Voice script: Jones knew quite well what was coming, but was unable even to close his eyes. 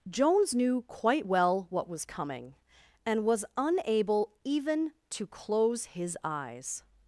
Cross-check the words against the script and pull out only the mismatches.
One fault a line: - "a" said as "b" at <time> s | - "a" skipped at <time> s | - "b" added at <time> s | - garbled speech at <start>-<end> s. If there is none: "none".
- "but" said as "and" at 3.0 s